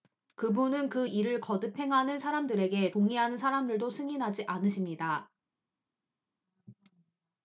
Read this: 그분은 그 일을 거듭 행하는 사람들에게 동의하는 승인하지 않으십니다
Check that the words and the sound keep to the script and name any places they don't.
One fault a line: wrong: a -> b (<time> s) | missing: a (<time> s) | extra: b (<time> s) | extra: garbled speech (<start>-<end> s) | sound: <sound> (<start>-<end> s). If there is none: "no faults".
extra: 사람들도 (3.4 s)